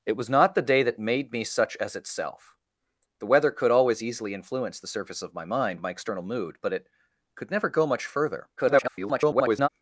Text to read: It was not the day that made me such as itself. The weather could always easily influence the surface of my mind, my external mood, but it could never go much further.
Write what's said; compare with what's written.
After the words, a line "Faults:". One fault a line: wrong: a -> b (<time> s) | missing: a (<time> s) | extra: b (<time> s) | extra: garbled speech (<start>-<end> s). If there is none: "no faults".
It was not the day that made me such as itself. The weather could always easily influence the surface of my mind, my external mood, but it could never go much further. [garbled]
Faults:
extra: garbled speech (8.6-9.7 s)